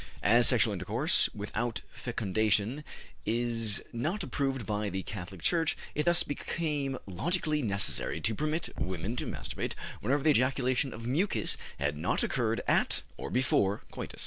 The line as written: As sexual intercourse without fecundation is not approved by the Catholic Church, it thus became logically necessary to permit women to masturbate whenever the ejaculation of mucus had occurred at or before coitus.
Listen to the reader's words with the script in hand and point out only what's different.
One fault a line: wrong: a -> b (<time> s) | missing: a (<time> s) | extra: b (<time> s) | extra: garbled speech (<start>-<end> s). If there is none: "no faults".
extra: not (12.0 s)